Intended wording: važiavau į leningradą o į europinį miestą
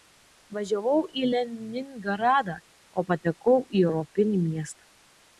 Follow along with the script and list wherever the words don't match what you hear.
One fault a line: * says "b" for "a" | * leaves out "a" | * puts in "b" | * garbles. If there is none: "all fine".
* puts in "patekau"